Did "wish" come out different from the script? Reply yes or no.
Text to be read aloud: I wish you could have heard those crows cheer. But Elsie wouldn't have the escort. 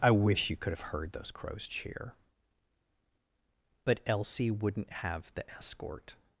no